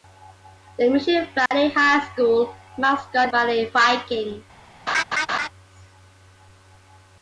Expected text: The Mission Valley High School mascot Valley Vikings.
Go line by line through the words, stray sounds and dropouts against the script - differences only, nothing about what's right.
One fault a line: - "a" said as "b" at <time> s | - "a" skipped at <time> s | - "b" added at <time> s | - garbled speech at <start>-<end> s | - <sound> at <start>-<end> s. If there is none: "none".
- dropout at 1.5-1.5 s
- laugh at 4.9-5.5 s